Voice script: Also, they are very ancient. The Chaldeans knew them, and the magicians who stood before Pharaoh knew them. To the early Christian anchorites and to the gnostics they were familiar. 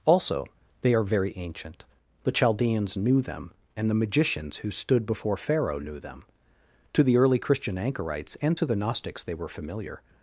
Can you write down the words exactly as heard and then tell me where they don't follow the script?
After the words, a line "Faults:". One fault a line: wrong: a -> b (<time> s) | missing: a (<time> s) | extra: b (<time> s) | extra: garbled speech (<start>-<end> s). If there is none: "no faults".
Also, they are very ancient. The Chaldeans knew them, and the magicians who stood before Pharaoh knew them. To the early Christian anchorites and to the gnostics they were familiar.
Faults:
no faults